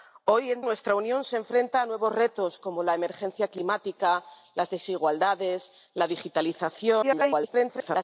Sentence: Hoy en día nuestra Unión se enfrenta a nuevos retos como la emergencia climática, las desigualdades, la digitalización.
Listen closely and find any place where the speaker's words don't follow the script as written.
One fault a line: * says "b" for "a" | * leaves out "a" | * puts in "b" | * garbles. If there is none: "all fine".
* leaves out "día"
* garbles